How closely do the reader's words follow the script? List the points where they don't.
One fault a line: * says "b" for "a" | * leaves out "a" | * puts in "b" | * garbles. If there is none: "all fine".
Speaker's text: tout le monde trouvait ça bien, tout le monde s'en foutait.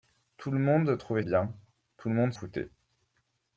* leaves out "ça"
* leaves out "s'en"